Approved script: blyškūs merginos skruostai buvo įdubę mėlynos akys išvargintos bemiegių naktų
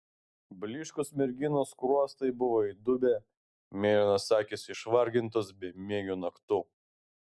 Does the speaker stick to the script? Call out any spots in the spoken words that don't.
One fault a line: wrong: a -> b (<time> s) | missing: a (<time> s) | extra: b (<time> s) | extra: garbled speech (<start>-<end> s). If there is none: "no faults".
no faults